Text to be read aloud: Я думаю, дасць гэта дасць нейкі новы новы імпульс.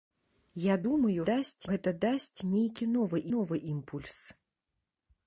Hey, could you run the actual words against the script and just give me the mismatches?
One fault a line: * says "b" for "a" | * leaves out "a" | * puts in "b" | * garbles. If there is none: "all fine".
all fine